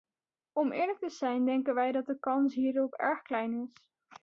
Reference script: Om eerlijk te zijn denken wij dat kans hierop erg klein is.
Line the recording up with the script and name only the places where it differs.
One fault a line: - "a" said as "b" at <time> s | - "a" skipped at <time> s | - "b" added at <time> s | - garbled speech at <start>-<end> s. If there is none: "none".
- "de" added at 2.0 s